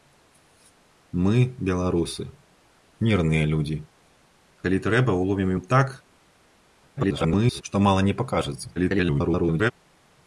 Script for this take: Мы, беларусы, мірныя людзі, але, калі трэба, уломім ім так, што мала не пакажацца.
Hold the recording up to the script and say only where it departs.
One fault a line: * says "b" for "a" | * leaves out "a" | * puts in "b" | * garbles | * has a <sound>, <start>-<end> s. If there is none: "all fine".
* leaves out "але"
* garbles
* garbles